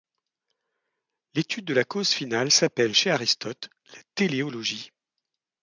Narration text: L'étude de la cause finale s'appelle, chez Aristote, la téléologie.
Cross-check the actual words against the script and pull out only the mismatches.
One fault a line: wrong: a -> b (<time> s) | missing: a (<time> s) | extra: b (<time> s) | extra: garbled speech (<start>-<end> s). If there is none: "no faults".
no faults